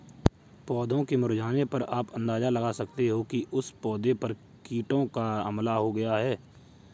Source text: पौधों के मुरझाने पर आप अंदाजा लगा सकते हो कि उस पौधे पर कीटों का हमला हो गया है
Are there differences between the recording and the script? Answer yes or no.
no